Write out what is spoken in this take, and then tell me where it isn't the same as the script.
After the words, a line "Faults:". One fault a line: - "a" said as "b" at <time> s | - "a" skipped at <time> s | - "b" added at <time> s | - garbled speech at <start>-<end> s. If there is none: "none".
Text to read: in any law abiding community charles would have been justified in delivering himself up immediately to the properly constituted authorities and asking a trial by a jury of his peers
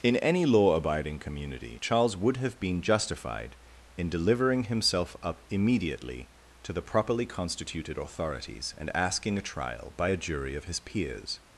in any law abiding community charles would have been justified in delivering himself up immediately to the properly constituted authorities and asking a trial by a jury of his peers
Faults:
none